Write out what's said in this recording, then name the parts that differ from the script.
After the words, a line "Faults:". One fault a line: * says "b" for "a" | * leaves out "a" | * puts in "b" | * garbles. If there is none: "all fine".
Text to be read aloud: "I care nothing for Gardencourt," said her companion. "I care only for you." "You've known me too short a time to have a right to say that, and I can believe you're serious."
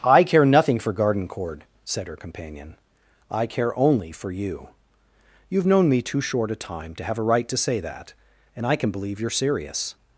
"I care nothing for Gardencourt," said her companion. "I care only for you." "You've known me too short a time to have a right to say that, and I can believe you're serious."
Faults:
all fine